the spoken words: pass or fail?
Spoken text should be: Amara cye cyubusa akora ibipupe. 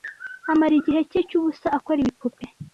fail